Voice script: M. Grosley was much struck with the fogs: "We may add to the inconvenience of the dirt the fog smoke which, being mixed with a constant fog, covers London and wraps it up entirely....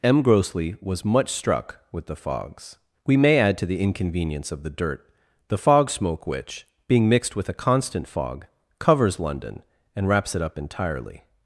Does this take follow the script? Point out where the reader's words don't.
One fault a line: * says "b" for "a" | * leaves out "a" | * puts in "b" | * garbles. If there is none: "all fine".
all fine